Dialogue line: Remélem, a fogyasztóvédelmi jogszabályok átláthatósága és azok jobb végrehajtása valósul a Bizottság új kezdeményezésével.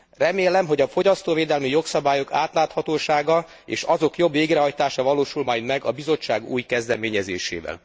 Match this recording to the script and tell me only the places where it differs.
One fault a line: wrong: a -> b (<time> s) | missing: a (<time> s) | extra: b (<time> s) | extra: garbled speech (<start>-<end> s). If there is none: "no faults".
extra: hogy (0.7 s)
extra: majd meg (5.4 s)